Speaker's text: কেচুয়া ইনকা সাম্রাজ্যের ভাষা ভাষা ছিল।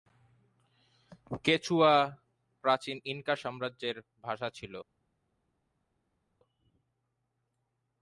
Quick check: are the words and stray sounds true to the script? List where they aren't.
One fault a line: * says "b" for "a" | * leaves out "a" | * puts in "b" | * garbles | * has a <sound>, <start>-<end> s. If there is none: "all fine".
* puts in "প্রাচীন"
* leaves out "ভাষা"